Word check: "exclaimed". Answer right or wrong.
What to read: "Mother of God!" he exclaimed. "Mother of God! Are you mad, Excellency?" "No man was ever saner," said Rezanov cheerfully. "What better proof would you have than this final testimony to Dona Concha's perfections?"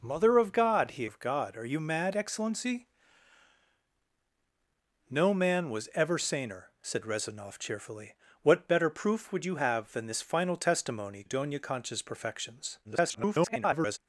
wrong